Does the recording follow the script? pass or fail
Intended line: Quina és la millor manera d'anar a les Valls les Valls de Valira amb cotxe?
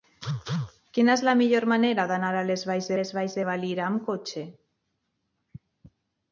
pass